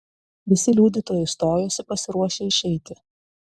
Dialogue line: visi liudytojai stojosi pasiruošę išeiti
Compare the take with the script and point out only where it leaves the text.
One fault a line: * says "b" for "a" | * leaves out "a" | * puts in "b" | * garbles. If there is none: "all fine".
all fine